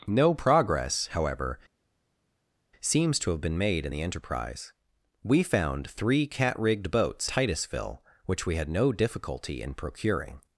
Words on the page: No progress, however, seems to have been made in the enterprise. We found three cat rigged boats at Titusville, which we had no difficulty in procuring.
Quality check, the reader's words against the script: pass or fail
fail